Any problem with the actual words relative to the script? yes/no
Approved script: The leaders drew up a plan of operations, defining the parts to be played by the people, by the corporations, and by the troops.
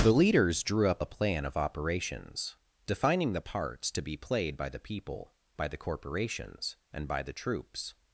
no